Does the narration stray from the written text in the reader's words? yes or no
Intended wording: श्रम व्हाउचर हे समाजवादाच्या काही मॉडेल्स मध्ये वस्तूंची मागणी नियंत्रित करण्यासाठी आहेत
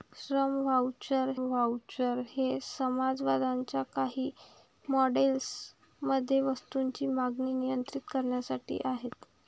yes